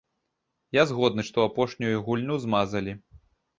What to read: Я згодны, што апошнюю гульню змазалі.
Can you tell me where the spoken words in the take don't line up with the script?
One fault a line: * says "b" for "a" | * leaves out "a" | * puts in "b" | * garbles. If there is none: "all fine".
all fine